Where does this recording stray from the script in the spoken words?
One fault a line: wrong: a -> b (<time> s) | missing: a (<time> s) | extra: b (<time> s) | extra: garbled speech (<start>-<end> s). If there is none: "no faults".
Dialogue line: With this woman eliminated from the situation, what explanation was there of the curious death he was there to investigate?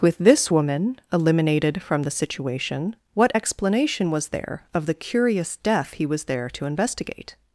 no faults